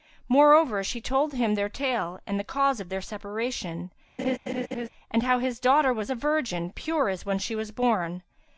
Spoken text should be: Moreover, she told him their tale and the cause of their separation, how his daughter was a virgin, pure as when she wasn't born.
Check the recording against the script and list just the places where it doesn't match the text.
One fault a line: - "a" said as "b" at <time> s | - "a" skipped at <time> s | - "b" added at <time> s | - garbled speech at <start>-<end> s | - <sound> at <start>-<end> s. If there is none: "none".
- laugh at 4.2-4.9 s
- "and" added at 5.1 s
- "wasn't" said as "was" at 7.6 s